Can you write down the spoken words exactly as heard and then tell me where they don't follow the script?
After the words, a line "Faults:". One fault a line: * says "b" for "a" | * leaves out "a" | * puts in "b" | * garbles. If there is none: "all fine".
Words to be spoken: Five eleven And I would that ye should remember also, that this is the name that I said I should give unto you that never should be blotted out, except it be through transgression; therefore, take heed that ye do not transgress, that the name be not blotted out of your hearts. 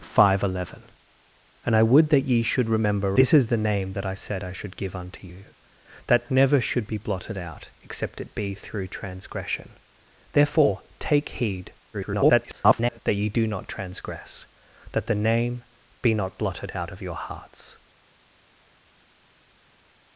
Five eleven And I would that ye should remember this is the name that I said I should give unto you that never should be blotted out, except it be through transgression; therefore, take heed [garbled] that ye do not transgress, that the name be not blotted out of your hearts.
Faults:
* leaves out "also that"
* garbles